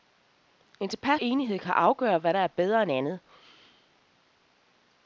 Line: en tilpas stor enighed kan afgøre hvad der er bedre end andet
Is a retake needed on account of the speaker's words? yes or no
yes